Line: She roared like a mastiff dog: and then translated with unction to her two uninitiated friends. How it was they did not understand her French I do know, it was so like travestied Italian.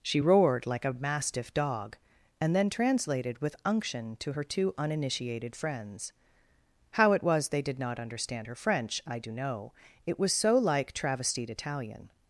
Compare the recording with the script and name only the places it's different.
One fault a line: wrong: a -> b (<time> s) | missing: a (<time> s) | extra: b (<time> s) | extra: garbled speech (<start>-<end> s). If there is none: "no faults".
no faults